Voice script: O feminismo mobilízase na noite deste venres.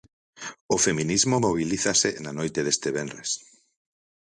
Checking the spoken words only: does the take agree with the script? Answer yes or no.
yes